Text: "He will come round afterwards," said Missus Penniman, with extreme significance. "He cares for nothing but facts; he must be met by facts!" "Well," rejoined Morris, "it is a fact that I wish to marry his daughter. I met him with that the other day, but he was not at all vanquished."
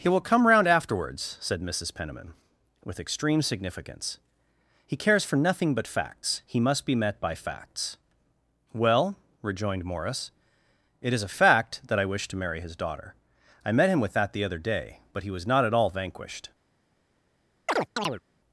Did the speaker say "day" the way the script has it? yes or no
yes